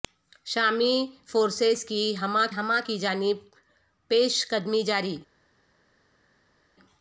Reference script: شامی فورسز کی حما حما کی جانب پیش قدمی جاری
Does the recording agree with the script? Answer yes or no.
yes